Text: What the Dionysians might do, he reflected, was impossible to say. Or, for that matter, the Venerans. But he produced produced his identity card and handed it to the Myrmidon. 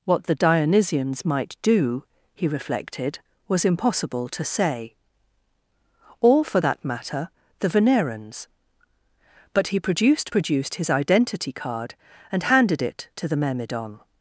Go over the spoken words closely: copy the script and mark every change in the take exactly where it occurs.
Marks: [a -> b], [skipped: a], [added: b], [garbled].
What the Dionysians might do, he reflected, was impossible to say. Or, for that matter, the Venerans. But he produced produced his identity card and handed it to the Myrmidon.